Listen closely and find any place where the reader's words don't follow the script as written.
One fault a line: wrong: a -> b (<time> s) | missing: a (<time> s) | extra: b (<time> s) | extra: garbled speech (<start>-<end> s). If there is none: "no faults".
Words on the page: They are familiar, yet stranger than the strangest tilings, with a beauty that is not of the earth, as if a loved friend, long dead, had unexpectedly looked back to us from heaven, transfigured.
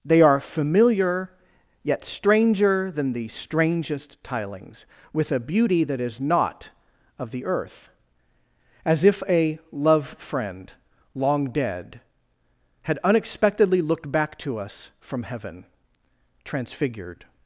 wrong: loved -> love (9.7 s)